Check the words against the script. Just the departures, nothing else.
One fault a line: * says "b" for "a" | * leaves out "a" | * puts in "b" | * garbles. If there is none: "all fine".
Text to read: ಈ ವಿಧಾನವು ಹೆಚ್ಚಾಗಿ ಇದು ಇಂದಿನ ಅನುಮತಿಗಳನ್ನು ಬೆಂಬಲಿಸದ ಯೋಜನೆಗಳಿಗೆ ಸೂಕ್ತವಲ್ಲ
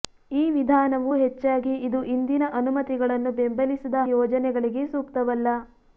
all fine